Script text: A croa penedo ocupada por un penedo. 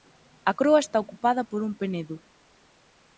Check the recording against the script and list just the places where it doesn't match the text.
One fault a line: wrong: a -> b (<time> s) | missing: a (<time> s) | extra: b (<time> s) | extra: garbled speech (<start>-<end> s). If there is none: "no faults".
wrong: penedo -> está (0.8 s)